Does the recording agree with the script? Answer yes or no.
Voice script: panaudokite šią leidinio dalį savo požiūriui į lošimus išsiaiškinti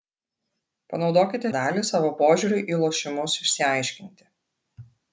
no